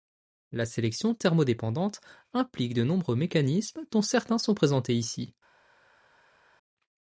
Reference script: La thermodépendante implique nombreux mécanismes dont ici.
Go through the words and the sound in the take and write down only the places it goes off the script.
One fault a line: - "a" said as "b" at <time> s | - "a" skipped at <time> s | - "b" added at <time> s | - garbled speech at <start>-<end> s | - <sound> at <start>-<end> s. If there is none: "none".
- "sélection" added at 0.7 s
- "de" added at 2.7 s
- "certains sont présentés" added at 4.0 s